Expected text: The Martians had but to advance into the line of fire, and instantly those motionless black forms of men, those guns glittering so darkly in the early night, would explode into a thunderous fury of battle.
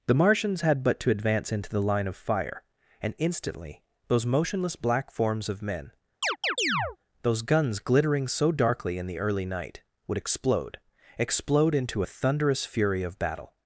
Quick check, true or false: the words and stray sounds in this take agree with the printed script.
false